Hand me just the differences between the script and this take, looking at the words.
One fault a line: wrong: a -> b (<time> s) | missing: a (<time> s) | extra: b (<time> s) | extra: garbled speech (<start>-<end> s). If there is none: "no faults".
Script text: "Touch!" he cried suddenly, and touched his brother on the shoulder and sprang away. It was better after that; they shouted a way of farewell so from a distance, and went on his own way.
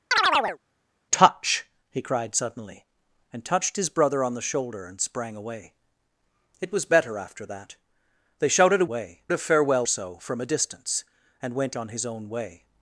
no faults